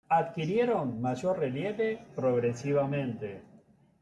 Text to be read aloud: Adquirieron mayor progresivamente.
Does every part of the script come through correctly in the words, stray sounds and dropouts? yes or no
no